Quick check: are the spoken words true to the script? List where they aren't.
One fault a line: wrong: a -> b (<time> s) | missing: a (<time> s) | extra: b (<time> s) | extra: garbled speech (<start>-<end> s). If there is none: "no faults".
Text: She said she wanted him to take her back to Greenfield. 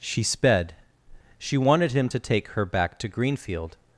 wrong: said -> sped (0.2 s)